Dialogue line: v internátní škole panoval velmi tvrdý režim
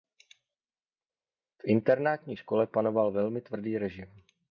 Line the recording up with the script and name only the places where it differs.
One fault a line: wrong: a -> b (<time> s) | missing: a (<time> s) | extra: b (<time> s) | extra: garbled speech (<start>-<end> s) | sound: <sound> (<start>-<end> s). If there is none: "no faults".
no faults